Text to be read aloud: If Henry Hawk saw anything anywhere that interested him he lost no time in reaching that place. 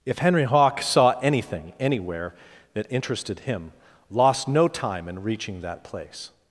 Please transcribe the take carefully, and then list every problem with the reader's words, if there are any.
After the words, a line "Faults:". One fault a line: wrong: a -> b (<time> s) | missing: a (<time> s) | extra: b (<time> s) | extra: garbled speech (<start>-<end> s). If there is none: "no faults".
If Henry Hawk saw anything anywhere that interested him lost no time in reaching that place.
Faults:
missing: he (3.7 s)